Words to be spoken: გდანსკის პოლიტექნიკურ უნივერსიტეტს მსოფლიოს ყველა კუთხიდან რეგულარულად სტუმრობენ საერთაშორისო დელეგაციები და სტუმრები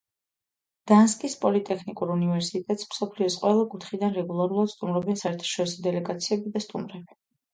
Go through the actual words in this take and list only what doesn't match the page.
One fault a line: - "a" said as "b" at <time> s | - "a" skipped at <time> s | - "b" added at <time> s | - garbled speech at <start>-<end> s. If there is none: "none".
none